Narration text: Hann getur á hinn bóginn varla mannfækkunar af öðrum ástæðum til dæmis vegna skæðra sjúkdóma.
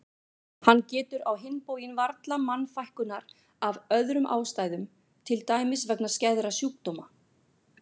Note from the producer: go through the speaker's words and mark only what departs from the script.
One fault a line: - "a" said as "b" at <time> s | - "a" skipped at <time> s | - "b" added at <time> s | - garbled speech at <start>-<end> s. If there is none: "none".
none